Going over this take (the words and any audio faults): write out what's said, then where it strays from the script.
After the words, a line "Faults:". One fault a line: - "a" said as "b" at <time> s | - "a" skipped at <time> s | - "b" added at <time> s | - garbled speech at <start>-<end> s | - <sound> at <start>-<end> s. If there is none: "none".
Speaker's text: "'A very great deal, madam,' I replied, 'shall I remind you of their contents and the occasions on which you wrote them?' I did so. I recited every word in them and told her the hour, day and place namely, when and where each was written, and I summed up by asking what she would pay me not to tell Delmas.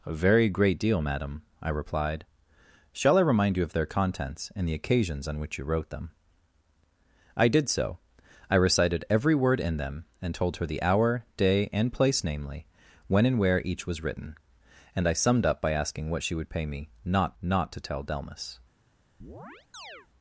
"'A very great deal, madam,' I replied, 'shall I remind you of their contents and the occasions on which you wrote them?' I did so. I recited every word in them and told her the hour, day and place namely, when and where each was written, and I summed up by asking what she would pay me not not to tell Delmas.
Faults:
- "not" added at 17.4 s
- chirp at 19.2-20.1 s